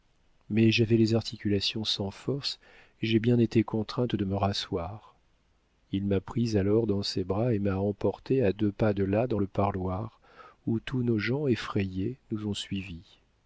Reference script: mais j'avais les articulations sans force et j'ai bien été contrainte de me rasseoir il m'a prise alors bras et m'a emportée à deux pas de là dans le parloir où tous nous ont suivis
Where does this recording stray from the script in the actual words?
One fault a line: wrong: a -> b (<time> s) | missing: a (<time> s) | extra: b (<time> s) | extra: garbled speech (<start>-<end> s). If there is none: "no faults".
extra: dans ses (6.9 s)
extra: nos gens effrayés (11.0 s)